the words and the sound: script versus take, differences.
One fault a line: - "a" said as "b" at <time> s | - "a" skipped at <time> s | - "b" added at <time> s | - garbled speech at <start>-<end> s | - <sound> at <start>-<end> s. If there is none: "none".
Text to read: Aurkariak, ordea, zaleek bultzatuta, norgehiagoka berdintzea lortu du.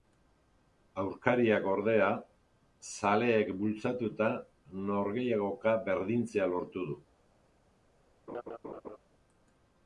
- laugh at 8.3-9.0 s